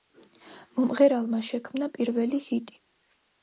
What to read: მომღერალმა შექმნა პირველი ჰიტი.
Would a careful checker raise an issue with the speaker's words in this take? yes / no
no